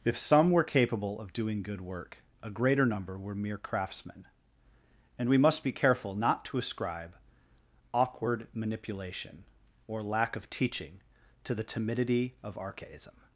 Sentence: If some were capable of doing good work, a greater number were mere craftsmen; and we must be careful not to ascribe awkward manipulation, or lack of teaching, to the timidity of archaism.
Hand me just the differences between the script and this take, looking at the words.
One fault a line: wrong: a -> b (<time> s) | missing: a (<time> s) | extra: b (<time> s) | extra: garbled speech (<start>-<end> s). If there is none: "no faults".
no faults